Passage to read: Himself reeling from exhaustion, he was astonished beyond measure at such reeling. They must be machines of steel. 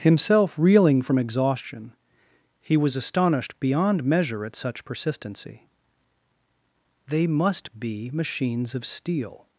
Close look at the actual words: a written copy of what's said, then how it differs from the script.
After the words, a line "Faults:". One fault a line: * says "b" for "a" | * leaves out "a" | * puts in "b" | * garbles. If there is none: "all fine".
Himself reeling from exhaustion, he was astonished beyond measure at such persistency. They must be machines of steel.
Faults:
* says "persistency" for "reeling"